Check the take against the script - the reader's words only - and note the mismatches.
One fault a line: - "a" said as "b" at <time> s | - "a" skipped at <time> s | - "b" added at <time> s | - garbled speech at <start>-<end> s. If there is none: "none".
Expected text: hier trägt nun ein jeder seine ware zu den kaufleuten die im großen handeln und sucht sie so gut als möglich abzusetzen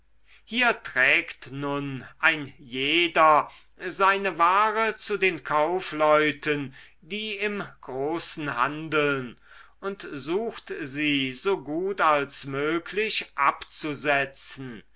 none